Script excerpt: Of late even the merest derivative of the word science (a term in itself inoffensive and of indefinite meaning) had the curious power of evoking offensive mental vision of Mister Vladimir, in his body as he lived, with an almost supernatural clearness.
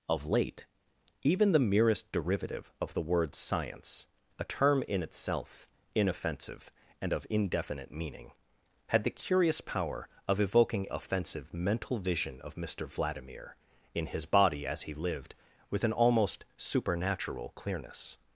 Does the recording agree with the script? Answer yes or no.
yes